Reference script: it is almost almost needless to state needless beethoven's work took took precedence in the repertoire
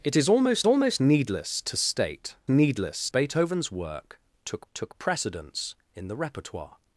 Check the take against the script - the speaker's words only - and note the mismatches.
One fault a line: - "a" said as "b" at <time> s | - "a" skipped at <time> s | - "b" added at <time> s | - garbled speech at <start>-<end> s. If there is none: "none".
none